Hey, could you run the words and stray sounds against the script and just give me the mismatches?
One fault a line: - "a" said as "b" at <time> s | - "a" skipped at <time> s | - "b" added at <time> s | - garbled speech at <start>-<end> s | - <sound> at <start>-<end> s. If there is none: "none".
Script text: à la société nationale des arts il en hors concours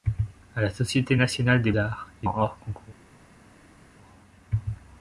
none